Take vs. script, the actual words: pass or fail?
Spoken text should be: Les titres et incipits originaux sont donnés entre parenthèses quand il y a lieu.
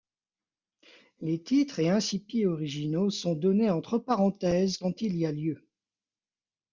pass